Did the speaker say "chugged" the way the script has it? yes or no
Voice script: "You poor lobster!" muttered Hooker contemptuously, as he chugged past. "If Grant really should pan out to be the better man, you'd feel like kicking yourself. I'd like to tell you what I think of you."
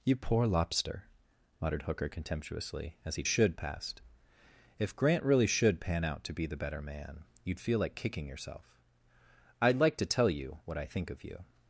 no